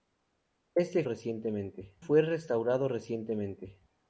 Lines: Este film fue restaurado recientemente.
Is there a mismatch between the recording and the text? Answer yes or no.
yes